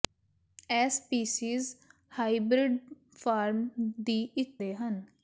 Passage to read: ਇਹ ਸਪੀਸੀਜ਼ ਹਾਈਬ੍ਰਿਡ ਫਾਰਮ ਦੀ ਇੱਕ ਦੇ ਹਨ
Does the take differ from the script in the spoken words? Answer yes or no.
no